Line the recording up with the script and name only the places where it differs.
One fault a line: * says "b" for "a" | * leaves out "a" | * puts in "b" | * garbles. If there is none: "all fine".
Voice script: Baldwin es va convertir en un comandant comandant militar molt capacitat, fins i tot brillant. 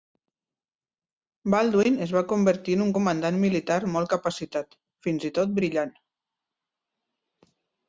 * leaves out "comandant"